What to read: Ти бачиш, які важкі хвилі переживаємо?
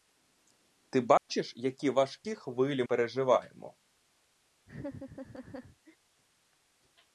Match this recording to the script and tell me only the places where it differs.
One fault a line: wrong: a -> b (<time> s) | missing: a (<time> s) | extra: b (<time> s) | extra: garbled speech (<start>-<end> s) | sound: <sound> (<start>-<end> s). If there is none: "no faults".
sound: dropout (1.2-1.3 s)
sound: laugh (4.7-6.0 s)